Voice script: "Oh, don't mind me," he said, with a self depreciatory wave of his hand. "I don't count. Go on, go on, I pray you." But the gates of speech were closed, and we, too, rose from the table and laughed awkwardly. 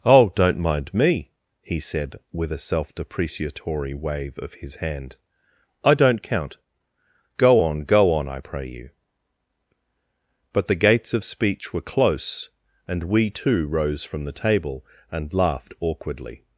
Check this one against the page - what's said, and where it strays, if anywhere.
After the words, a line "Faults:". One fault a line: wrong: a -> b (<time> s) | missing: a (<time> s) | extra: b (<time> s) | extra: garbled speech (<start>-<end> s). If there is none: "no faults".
"Oh, don't mind me," he said, with a self depreciatory wave of his hand. "I don't count. Go on, go on, I pray you." But the gates of speech were close, and we, too, rose from the table and laughed awkwardly.
Faults:
wrong: closed -> close (11.8 s)